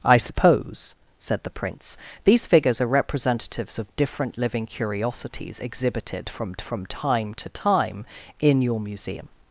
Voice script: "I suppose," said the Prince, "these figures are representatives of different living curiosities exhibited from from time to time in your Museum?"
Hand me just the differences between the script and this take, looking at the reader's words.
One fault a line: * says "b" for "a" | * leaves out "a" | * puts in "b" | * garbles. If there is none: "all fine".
all fine